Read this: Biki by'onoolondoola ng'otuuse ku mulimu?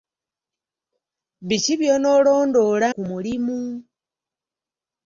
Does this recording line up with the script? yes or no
no